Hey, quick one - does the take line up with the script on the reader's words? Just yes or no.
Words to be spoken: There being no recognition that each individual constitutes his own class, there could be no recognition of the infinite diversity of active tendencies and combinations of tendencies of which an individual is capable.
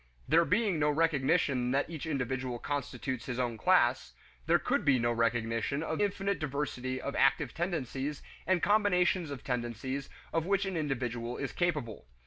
no